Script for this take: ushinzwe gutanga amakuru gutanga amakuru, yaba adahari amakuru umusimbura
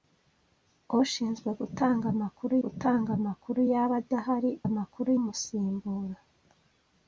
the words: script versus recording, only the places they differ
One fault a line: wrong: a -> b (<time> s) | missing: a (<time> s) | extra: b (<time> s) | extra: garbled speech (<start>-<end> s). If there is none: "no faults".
no faults